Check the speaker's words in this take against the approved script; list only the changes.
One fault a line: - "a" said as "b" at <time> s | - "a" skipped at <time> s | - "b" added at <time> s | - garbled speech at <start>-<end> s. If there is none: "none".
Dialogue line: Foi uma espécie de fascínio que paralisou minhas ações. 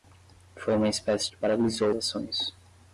- "de fascínio" skipped at 1.3 s
- "minhas" skipped at 1.9 s